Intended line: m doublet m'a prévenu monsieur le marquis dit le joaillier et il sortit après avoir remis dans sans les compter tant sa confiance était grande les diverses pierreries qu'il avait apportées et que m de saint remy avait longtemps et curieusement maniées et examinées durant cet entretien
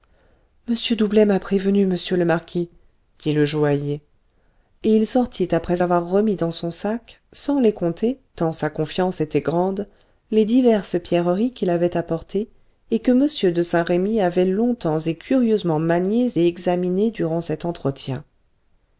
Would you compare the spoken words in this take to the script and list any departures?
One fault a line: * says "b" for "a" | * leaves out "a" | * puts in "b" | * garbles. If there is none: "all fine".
* puts in "son sac"